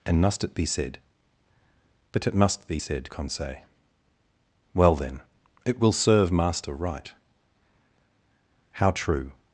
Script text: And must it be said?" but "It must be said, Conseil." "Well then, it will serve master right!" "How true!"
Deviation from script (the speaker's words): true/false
false